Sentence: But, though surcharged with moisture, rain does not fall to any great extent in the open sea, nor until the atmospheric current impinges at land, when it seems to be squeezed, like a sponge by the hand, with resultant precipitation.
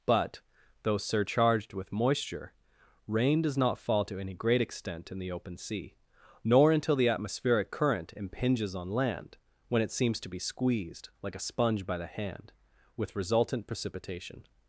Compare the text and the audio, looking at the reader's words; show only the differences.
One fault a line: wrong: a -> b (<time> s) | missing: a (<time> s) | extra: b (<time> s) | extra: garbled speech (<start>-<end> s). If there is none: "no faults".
wrong: at -> on (8.8 s)